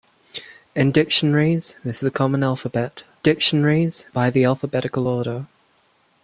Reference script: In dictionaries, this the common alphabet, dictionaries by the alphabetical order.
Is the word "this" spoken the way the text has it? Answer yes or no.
yes